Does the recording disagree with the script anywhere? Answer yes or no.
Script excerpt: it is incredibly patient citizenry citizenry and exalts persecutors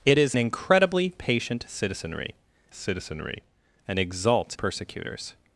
no